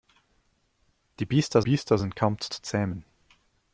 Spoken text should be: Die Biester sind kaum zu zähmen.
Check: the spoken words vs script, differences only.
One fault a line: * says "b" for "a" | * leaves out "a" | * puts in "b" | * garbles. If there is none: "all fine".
* puts in "Biester"
* puts in "zu"